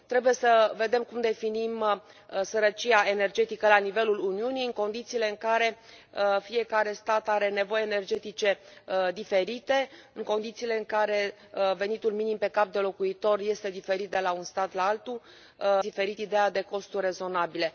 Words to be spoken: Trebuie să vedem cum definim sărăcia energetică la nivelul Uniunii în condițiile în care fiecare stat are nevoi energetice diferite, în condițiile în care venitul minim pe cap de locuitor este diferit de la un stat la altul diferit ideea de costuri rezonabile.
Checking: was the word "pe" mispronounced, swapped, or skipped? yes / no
no